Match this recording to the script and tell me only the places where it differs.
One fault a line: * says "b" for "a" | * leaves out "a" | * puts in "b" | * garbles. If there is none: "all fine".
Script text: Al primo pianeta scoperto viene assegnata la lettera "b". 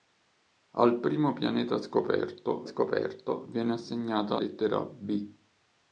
* puts in "scoperto"
* leaves out "la"